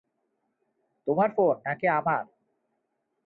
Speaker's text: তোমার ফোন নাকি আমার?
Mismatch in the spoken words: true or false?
false